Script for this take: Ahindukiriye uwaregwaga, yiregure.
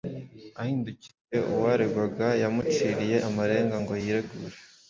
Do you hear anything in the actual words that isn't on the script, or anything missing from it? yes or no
yes